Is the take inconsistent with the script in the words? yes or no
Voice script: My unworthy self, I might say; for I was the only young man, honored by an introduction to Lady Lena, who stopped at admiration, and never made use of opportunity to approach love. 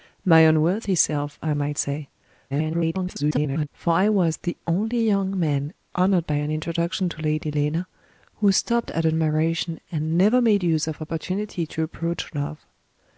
yes